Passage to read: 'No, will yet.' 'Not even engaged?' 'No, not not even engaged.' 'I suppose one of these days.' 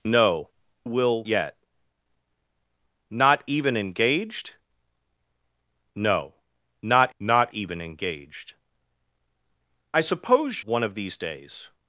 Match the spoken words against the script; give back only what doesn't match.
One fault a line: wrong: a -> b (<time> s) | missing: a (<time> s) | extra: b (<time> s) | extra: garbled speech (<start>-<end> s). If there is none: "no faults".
no faults